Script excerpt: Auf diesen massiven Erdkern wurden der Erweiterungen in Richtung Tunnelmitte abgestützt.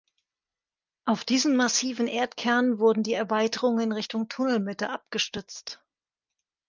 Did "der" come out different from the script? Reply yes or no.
yes